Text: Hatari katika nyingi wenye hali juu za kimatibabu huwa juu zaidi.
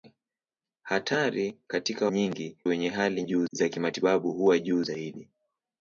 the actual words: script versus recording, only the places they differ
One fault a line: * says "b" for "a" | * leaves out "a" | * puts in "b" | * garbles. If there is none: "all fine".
all fine